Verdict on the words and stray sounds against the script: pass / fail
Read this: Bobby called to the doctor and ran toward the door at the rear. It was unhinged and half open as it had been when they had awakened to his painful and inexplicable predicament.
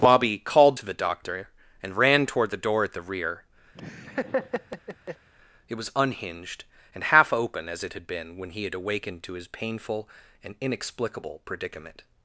fail